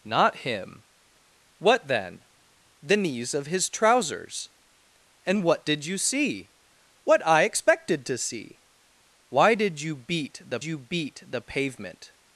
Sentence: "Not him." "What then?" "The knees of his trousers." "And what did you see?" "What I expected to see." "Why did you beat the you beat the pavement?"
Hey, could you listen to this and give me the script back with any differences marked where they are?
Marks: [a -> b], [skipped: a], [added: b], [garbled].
"Not him." "What then?" "The knees of his trousers." "And what did you see?" "What I expected to see." "Why did you beat the you beat the pavement?"